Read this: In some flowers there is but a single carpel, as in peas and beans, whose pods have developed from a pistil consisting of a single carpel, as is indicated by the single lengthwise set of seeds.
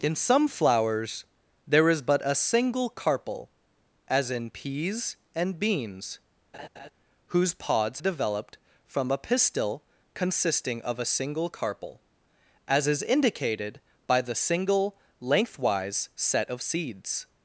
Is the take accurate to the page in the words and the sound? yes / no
no